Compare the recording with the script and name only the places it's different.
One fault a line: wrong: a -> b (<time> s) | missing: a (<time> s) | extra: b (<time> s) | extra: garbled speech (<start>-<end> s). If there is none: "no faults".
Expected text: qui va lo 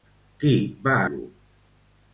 no faults